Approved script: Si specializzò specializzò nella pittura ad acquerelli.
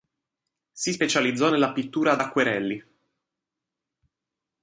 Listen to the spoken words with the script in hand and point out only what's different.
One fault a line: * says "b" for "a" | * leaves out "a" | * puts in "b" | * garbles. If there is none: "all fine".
* leaves out "specializzò"